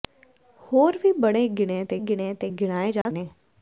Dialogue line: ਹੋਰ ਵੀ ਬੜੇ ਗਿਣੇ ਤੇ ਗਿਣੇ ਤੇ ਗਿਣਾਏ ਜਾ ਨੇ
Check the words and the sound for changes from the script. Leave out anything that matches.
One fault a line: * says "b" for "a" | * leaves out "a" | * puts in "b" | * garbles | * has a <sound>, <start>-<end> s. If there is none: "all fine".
* has a dropout, 3.0-3.1 s